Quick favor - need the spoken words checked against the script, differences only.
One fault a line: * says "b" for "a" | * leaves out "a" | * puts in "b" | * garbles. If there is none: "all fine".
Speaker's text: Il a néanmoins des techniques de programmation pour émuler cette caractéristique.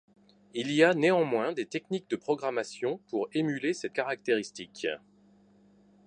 * puts in "y"